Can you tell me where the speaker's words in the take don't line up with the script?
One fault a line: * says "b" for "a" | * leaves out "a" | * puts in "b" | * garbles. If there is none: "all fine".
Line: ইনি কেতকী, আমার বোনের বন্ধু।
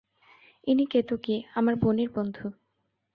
all fine